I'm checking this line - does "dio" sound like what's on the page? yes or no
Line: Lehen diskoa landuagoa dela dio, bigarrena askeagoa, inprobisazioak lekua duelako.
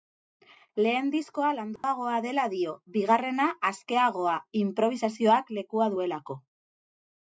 yes